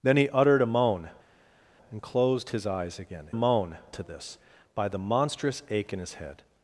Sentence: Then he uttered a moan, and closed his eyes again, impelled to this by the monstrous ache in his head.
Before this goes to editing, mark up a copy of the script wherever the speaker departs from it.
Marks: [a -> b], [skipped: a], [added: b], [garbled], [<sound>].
Then he uttered a moan, and closed his eyes again, [impelled -> moan] to this by the monstrous ache in his head.